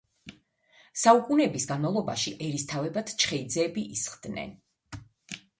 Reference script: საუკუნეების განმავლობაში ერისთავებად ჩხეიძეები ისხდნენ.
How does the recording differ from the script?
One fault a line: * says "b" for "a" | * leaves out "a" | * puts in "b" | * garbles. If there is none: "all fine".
all fine